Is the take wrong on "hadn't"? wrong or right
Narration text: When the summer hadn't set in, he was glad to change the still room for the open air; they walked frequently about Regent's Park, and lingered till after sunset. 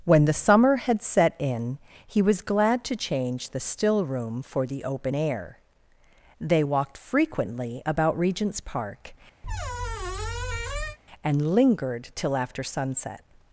wrong